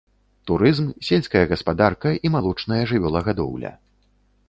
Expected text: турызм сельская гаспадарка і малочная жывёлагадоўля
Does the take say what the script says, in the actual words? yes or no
yes